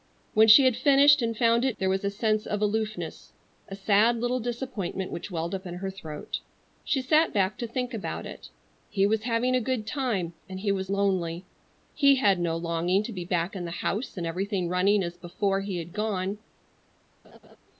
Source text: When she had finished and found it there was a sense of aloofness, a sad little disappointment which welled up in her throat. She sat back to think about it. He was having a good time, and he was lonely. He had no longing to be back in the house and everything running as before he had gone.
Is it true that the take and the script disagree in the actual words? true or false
false